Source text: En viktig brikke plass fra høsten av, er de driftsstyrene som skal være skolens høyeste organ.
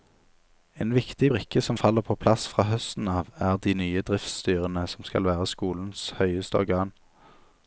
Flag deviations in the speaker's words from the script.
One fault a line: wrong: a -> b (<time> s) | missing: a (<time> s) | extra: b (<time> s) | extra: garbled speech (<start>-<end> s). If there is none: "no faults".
extra: som faller på (1.6 s)
extra: nye (3.8 s)